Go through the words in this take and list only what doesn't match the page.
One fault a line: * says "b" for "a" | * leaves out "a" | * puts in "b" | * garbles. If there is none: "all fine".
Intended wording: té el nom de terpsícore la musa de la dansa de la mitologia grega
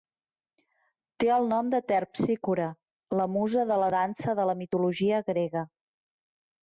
all fine